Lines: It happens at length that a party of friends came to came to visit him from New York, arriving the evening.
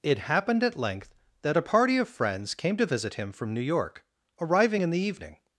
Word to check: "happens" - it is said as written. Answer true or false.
false